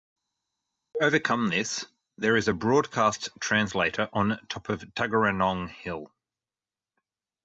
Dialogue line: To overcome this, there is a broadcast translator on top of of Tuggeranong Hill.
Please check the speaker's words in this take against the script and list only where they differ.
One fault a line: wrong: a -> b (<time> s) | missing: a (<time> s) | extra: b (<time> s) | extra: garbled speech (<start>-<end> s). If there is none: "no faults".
missing: of (4.8 s)